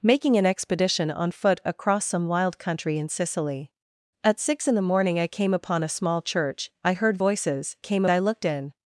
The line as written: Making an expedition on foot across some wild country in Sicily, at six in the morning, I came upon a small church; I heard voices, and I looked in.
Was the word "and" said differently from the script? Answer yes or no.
yes